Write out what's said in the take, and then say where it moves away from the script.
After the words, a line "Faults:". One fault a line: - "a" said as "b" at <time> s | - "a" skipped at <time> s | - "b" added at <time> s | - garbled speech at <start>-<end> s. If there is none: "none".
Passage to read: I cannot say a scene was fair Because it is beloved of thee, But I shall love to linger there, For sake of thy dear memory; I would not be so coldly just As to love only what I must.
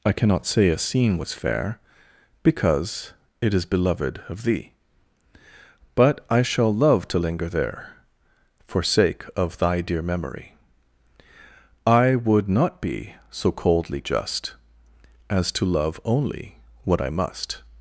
I cannot say a scene was fair Because it is beloved of thee, But I shall love to linger there, For sake of thy dear memory; I would not be so coldly just As to love only what I must.
Faults:
none